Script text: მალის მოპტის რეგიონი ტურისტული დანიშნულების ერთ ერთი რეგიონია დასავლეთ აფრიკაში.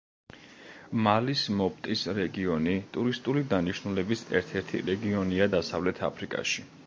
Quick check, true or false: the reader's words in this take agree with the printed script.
true